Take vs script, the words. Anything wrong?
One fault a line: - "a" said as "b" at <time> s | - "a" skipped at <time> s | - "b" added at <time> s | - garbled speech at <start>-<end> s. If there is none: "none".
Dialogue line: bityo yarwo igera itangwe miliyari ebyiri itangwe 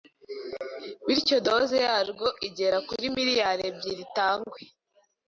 - "doze" added at 1.5 s
- "itangwe" said as "kuri" at 2.9 s